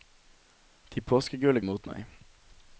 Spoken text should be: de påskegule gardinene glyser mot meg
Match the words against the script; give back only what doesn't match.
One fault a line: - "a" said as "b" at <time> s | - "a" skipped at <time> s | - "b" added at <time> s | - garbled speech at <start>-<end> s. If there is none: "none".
- "gardinene glyser" skipped at 1.6 s